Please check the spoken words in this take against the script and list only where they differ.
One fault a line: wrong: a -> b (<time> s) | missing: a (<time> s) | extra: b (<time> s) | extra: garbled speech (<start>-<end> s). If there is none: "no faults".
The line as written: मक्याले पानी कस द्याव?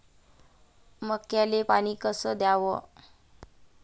no faults